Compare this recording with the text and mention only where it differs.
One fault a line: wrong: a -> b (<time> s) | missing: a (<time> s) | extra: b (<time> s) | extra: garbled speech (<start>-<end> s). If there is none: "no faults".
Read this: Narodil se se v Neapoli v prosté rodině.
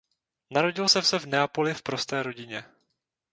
no faults